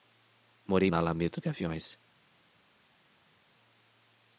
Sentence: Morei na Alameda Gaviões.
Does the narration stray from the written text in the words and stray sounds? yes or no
no